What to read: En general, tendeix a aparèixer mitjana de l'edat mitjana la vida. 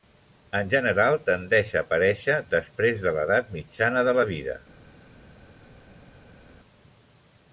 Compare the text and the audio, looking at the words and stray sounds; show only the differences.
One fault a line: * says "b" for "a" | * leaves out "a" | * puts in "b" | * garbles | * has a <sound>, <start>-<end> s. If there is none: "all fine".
* says "després" for "mitjana"
* puts in "de"